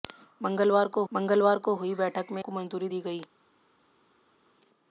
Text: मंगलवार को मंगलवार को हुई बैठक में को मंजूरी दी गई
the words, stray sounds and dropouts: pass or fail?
pass